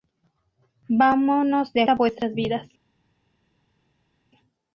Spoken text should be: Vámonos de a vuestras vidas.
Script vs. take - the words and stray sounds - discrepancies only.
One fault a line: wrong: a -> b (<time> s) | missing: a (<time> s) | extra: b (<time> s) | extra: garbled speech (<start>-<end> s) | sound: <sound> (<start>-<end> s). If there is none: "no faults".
no faults